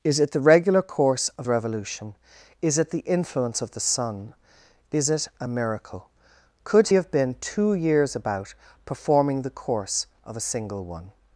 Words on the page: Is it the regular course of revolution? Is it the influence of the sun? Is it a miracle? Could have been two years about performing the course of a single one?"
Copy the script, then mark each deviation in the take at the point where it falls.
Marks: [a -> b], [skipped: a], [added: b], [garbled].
Is it the regular course of revolution? Is it the influence of the sun? Is it a miracle? Could have been two years about performing the course of a single one?"